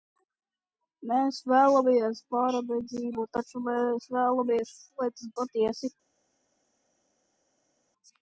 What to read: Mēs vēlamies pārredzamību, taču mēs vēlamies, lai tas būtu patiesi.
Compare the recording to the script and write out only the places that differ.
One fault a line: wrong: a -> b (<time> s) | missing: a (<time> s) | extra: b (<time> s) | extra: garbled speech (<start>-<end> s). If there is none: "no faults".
missing: būtu (5.3 s)